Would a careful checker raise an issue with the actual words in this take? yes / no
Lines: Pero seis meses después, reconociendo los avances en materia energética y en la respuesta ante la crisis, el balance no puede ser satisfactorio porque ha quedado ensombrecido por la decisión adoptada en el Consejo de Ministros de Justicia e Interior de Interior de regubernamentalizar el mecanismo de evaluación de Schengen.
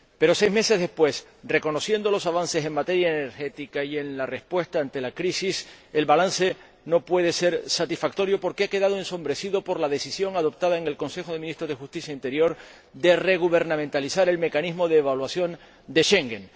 yes